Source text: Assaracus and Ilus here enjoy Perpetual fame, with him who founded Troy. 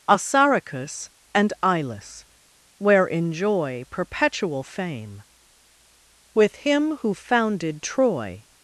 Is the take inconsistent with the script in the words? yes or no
yes